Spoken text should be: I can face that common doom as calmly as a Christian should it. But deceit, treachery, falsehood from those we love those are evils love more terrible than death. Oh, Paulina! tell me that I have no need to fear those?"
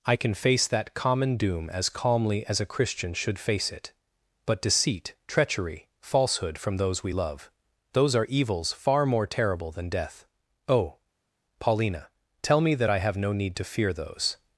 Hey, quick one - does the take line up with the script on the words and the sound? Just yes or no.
no